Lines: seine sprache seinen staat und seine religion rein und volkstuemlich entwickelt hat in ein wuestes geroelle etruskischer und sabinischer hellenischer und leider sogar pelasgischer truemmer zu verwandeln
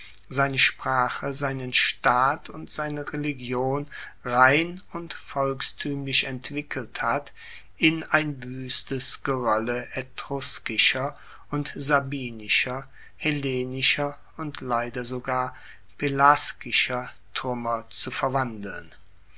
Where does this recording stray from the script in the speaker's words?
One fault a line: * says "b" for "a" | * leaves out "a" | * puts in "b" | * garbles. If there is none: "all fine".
all fine